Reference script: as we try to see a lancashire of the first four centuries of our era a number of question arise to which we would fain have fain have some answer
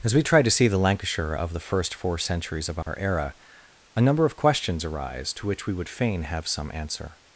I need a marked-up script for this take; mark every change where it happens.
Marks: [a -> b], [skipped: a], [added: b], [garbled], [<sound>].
as we try to see [a -> the] lancashire of the first four centuries of our [dropout] era a number of [question -> questions] arise to which we would fain have [skipped: fain have] some answer